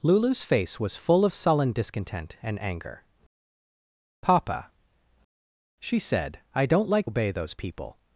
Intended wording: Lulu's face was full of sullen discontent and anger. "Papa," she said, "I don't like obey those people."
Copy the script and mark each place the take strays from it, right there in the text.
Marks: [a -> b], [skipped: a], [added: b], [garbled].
Lulu's face was full of sullen discontent and anger. "Papa," she said, "I don't like obey those people."